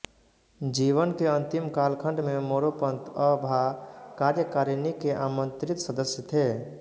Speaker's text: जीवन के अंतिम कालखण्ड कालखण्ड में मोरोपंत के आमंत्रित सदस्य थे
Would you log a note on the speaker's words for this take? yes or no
yes